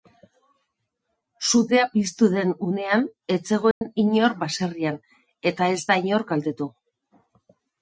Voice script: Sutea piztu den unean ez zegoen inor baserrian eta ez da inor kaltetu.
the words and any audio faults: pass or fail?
fail